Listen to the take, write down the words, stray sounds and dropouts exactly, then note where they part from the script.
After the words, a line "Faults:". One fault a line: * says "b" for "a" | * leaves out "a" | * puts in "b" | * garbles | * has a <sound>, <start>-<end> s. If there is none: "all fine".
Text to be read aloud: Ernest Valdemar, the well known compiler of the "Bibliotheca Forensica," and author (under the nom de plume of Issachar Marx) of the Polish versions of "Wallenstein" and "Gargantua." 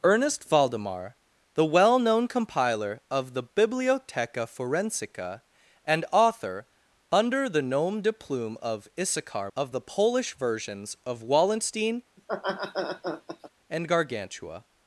Ernest Valdemar, the well known compiler of the "Bibliotheca Forensica," and author (under the nom de plume of Issachar) Of the Polish versions of "Wallenstein" and "Gargantua."
Faults:
* leaves out "Marx"
* has a laugh, 12.2-13.5 s